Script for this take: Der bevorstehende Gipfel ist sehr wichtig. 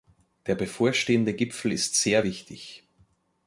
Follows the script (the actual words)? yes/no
yes